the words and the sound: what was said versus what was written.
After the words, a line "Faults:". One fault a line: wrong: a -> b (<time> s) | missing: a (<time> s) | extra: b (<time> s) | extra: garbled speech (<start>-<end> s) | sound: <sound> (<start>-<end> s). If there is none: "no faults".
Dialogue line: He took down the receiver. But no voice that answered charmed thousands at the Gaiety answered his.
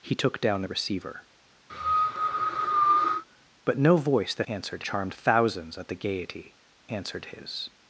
He took down the receiver. But no voice that answered charmed thousands at the Gaiety answered his.
Faults:
sound: cough (1.7-3.2 s)